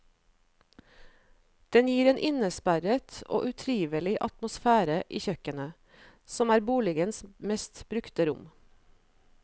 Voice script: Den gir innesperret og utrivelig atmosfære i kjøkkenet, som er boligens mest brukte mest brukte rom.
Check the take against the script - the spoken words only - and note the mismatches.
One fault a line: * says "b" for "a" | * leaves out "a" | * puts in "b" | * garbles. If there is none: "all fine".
* puts in "en"
* leaves out "mest brukte"